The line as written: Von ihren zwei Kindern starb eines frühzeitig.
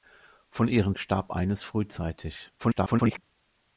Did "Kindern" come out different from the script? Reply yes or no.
yes